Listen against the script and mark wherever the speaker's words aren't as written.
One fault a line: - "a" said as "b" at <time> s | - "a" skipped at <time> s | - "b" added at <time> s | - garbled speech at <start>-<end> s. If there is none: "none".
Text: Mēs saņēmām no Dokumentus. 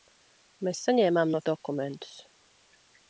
none